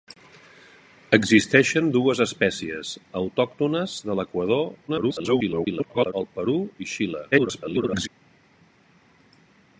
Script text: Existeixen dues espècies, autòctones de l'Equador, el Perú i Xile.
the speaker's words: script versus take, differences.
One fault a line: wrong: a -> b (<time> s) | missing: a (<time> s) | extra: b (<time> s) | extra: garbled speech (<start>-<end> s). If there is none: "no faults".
extra: garbled speech (4.9-6.1 s)
extra: garbled speech (7.3-8.1 s)